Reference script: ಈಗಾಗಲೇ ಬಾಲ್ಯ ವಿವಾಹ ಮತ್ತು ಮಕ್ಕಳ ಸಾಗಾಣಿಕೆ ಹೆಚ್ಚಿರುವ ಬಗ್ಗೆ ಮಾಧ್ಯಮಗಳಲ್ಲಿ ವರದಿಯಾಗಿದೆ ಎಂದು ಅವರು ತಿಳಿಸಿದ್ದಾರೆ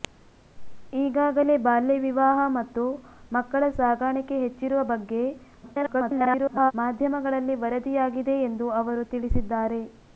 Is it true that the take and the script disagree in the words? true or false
true